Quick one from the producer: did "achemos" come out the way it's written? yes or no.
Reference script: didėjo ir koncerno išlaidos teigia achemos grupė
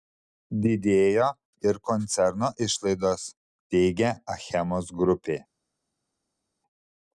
yes